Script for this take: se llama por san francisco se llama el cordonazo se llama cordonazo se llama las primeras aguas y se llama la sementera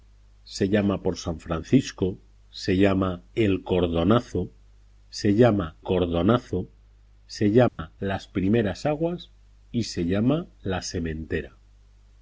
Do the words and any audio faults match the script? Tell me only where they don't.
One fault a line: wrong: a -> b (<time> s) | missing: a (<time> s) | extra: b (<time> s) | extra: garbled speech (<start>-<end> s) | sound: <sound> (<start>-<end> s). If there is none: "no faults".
sound: dropout (7.7-7.8 s)